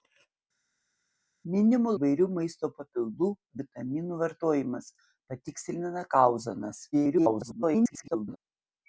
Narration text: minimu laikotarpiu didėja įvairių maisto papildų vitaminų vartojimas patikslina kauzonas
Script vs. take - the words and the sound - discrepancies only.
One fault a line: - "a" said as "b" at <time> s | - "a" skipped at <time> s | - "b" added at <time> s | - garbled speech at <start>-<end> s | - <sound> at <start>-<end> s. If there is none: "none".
- "laikotarpiu didėja" skipped at 1.9 s
- garbled speech at 6.9-8.4 s